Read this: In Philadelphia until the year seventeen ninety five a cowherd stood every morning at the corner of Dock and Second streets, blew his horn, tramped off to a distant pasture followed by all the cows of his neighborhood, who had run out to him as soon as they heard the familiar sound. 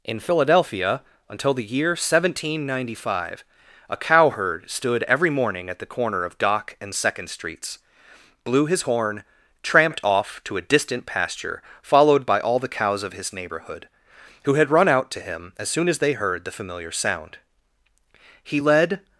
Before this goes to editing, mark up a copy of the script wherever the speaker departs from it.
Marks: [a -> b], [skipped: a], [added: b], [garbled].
In Philadelphia until the year seventeen ninety five a cowherd stood every morning at the corner of Dock and Second streets, blew his horn, tramped off to a distant pasture followed by all the cows of his neighborhood, who had run out to him as soon as they heard the familiar sound. [added: He led]